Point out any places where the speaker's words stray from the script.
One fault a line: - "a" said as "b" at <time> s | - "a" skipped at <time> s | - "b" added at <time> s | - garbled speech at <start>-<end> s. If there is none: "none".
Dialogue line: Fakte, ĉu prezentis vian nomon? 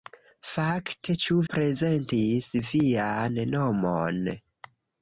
none